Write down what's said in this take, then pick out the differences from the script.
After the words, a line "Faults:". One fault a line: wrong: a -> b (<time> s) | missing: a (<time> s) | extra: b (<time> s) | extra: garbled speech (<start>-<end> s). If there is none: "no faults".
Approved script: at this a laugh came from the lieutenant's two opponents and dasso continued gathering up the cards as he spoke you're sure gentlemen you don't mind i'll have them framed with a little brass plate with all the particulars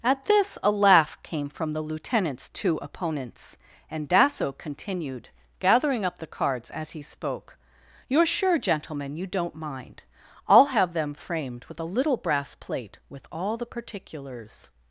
at this a laugh came from the lieutenant's two opponents and dasso continued gathering up the cards as he spoke you're sure gentlemen you don't mind i'll have them framed with a little brass plate with all the particulars
Faults:
no faults